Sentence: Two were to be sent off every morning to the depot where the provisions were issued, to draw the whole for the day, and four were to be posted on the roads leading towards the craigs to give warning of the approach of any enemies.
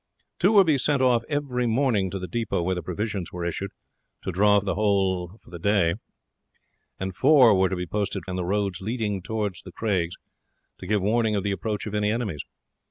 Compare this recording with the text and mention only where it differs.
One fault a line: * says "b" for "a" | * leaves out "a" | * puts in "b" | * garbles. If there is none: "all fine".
all fine